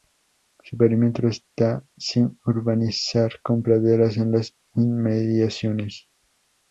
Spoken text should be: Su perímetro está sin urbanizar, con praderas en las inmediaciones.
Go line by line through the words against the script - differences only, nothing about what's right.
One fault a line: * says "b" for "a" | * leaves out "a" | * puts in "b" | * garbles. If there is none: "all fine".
all fine